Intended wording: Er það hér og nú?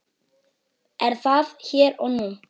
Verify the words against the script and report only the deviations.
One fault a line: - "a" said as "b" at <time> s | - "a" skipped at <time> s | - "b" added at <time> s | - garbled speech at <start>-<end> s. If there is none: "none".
none